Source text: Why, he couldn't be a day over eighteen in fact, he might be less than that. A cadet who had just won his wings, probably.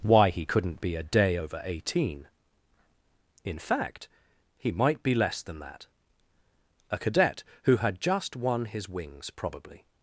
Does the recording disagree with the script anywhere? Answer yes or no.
no